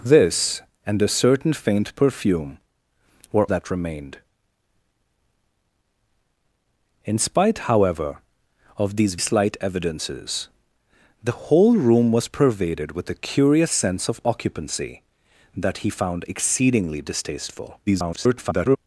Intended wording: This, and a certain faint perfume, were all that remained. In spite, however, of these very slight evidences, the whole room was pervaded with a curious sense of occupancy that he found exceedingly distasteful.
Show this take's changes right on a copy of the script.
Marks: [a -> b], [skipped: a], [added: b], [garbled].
This, and a certain faint perfume, were [skipped: all] that remained. In spite, however, of these [skipped: very] slight evidences, the whole room was pervaded with a curious sense of occupancy that he found exceedingly distasteful. [garbled]